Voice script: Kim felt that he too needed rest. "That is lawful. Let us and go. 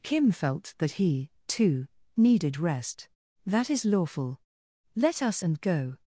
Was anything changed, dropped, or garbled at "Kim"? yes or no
no